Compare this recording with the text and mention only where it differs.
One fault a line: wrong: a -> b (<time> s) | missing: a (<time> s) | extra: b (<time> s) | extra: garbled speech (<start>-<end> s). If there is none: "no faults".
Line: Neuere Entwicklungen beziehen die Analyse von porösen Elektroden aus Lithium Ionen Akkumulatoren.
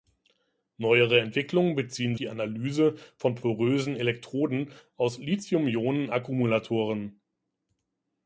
no faults